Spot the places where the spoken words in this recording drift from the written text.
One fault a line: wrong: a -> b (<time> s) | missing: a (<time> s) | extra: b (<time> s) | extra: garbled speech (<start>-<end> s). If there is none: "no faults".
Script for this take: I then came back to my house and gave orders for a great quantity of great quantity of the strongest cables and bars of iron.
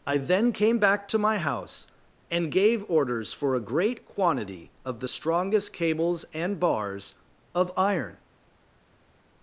missing: great quantity of (5.0 s)